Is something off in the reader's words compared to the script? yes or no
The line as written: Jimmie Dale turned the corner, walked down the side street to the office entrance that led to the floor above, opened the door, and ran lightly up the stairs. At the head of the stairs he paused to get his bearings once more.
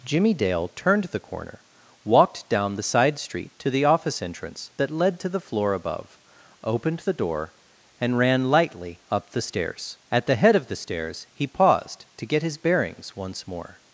no